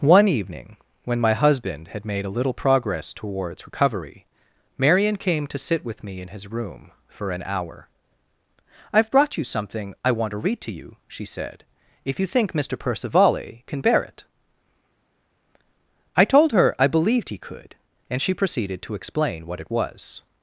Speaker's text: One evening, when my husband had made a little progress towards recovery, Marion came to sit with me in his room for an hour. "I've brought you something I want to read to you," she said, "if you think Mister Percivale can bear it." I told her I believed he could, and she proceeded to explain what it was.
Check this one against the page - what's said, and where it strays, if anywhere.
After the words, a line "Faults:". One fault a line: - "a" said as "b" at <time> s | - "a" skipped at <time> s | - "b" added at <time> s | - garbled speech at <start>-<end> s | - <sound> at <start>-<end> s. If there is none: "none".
One evening, when my husband had made a little progress towards recovery, Marion came to sit with me in his room for an hour. "I've brought you something I want to read to you," she said, "if you think Mister Percivale can bear it." I told her I believed he could, and she proceeded to explain what it was.
Faults:
none